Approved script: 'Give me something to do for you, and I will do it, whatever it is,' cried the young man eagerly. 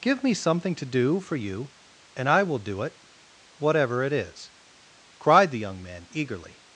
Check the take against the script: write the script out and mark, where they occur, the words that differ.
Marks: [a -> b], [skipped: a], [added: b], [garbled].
'Give me something to do for you, and I will do it, whatever it is,' cried the young man eagerly.